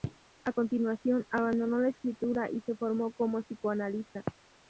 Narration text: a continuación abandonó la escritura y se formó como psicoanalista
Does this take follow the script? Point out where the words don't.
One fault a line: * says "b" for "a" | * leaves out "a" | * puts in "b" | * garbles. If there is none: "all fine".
all fine